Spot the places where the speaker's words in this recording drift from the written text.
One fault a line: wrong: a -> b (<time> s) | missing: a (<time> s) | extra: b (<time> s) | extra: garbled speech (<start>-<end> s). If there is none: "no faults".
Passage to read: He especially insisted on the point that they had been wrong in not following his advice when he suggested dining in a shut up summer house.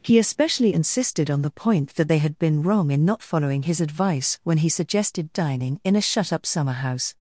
no faults